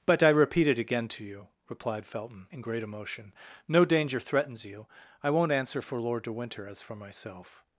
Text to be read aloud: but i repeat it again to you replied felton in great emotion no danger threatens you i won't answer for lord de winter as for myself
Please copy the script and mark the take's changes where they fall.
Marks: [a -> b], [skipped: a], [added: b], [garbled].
but i repeat it again to you replied felton in great emotion no danger threatens you i won't answer for lord de winter as for myself